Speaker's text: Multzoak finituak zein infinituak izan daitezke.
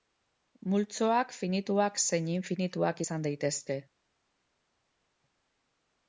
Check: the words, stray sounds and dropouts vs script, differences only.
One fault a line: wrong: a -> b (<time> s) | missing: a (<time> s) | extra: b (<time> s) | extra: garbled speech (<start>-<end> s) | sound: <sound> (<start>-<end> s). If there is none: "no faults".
no faults